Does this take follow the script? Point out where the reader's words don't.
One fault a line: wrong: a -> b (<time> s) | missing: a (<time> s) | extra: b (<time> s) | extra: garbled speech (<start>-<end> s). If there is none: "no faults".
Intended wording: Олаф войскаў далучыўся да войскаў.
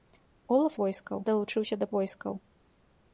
no faults